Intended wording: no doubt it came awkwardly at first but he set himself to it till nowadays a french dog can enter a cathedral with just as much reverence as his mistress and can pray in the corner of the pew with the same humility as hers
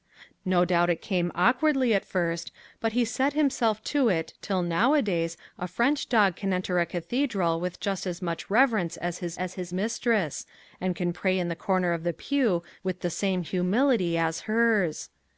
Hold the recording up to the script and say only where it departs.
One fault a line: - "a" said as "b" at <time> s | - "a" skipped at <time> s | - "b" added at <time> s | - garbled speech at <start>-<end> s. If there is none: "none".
- "as his" added at 9.3 s